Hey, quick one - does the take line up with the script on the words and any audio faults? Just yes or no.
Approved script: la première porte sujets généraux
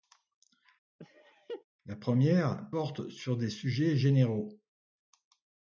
no